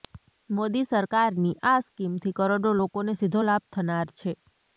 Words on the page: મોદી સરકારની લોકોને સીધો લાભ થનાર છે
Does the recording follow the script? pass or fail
fail